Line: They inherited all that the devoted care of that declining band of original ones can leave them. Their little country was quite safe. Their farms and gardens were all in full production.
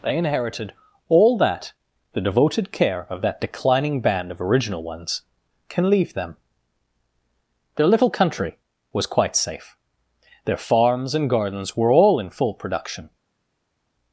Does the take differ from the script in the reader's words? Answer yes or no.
no